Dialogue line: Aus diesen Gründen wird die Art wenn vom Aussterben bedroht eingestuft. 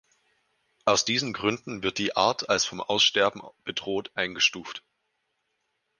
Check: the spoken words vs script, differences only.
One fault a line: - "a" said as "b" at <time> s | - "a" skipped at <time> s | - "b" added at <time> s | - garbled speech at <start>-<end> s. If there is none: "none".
- "wenn" said as "als" at 2.5 s